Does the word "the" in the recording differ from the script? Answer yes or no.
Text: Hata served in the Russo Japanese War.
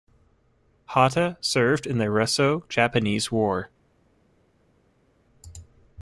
no